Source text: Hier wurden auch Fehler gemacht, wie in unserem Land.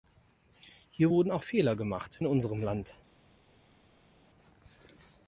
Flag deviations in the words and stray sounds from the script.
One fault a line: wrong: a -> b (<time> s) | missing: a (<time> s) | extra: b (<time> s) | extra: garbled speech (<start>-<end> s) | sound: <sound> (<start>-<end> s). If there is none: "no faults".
missing: wie (2.2 s)